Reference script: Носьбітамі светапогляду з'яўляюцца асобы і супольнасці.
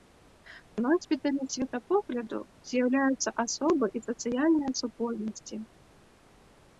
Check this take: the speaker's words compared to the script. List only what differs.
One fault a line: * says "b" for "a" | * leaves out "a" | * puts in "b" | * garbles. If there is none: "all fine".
* puts in "сацыяльныя"